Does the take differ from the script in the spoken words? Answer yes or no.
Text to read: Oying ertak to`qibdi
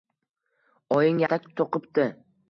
no